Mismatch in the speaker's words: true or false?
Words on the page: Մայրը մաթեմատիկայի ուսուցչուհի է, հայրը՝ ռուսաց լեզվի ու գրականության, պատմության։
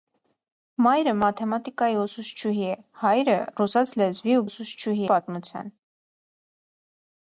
true